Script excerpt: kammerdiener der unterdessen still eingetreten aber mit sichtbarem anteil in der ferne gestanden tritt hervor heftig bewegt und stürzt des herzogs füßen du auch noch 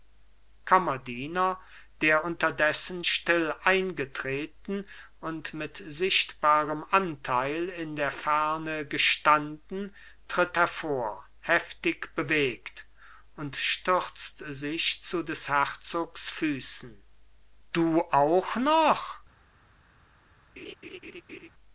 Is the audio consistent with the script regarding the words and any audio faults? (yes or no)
no